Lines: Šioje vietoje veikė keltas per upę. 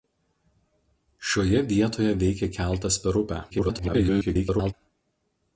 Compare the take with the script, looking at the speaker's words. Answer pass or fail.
fail